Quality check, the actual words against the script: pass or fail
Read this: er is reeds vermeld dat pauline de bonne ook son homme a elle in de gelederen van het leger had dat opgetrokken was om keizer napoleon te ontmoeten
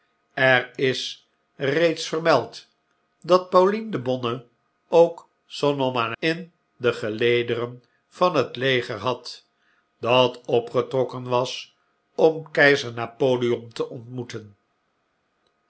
fail